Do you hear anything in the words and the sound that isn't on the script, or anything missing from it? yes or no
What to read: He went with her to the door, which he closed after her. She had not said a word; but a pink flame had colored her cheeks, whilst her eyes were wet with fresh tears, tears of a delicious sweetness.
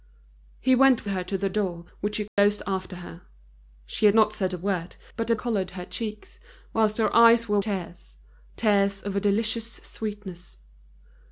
yes